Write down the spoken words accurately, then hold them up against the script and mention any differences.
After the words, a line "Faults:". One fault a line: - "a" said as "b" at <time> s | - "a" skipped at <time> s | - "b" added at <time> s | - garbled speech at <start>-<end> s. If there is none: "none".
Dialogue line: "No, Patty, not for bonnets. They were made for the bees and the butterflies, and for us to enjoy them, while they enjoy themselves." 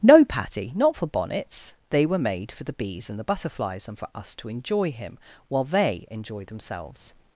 "No, Patty, not for bonnets. They were made for the bees and the butterflies, and for us to enjoy him, while they enjoy themselves."
Faults:
- "them" said as "him" at 4.9 s